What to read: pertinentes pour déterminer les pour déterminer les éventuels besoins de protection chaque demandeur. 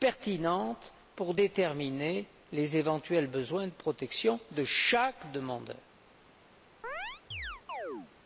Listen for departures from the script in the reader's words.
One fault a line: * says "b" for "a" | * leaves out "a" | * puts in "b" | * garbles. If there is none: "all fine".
* leaves out "pour déterminer les"
* puts in "de"